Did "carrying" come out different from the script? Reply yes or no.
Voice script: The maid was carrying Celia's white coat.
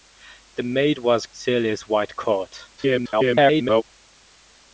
yes